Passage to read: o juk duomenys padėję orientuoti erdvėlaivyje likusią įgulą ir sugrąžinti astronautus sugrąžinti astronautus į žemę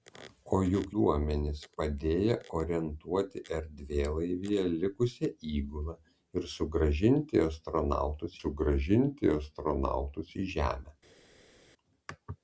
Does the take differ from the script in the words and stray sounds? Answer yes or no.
no